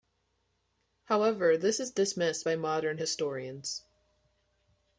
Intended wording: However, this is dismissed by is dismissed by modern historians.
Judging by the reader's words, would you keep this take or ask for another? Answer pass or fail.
fail